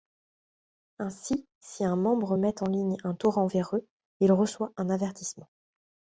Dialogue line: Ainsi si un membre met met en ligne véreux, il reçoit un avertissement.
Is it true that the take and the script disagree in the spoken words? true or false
true